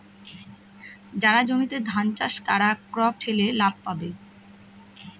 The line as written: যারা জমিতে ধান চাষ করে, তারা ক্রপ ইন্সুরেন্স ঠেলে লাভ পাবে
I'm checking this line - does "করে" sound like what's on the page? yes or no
no